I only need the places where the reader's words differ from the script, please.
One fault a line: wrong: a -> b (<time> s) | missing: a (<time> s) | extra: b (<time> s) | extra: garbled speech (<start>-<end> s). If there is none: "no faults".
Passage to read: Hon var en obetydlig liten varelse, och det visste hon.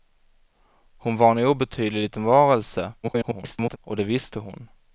extra: garbled speech (3.0-3.8 s)